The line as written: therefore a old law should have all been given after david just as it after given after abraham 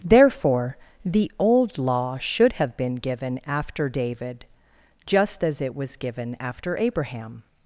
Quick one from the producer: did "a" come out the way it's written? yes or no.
no